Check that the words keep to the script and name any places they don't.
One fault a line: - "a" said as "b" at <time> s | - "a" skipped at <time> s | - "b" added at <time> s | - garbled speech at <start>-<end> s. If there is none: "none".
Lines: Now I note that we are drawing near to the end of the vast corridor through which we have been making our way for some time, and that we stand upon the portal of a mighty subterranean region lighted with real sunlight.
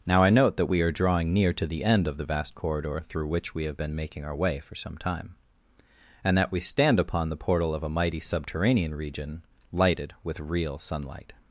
none